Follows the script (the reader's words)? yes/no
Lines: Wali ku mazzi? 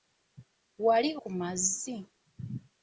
yes